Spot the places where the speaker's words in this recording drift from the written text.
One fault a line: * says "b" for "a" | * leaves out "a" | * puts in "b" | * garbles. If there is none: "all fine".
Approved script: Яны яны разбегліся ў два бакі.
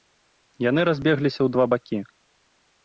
* leaves out "яны"